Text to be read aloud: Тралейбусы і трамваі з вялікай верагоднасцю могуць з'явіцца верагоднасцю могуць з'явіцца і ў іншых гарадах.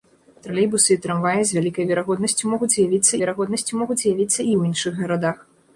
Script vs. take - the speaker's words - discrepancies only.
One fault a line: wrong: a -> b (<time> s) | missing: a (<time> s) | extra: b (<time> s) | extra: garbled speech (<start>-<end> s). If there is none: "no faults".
no faults